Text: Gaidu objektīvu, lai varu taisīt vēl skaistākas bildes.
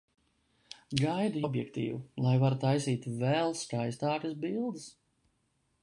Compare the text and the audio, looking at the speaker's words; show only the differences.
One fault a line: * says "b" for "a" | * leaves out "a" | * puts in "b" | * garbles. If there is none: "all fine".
all fine